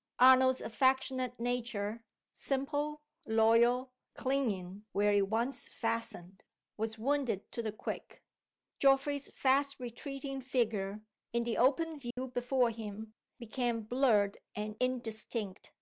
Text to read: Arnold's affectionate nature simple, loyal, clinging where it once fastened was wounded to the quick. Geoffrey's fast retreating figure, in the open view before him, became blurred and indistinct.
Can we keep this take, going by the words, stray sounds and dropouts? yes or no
no